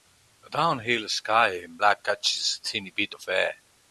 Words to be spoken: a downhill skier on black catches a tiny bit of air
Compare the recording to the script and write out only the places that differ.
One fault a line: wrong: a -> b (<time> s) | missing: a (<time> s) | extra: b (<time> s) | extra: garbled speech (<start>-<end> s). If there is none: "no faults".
wrong: on -> in (1.6 s)